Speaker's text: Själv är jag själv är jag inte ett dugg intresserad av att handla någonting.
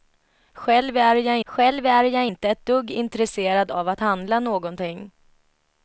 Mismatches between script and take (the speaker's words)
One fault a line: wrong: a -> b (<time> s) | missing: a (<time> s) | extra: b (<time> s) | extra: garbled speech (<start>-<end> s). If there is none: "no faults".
no faults